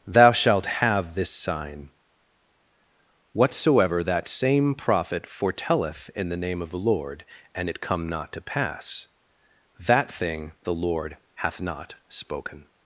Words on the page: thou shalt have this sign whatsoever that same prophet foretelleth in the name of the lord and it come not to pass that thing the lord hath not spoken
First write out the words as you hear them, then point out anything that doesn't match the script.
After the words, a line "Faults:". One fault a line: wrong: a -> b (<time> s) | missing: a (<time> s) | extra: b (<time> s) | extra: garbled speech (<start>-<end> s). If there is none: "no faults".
thou shalt have this sign whatsoever that same prophet foretelleth in the name of the lord and it come not to pass that thing the lord hath not spoken
Faults:
no faults